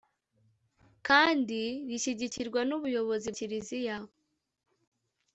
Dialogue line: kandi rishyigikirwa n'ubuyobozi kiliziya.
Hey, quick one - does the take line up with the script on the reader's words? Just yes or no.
yes